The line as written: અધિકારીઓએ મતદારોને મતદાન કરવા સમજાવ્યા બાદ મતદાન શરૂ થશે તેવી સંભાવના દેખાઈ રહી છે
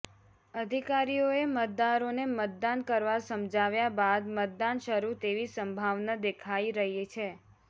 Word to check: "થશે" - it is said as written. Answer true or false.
false